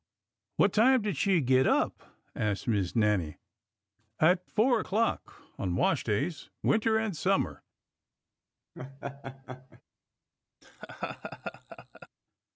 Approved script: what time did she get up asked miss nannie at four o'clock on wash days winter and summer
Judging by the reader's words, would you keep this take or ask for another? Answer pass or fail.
pass